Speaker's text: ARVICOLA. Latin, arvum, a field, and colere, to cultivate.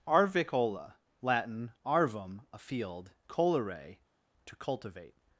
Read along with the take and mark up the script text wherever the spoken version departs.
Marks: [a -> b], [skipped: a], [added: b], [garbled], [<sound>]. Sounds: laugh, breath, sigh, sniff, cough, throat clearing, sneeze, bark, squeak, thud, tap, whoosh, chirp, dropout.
ARVICOLA. Latin, arvum, a field, [skipped: and] colere, to cultivate.